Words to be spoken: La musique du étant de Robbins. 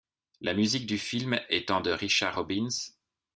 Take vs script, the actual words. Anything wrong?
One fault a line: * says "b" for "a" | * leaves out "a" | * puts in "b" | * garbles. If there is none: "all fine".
* puts in "film"
* puts in "Richard"